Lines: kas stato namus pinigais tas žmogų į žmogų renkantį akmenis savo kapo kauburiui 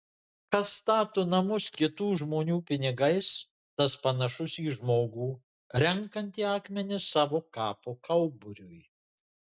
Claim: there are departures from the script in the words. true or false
true